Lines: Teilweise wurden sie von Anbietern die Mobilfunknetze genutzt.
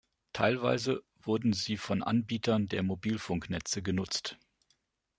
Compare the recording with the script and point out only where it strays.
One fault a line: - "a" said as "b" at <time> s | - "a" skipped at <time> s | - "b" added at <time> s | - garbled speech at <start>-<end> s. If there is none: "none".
- "die" said as "der" at 2.7 s